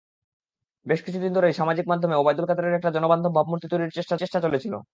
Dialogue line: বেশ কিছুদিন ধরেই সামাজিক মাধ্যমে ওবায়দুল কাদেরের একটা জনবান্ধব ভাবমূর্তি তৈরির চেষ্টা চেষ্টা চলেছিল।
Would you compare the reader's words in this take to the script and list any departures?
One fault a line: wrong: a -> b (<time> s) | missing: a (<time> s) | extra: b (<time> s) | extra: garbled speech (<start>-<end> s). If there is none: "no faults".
no faults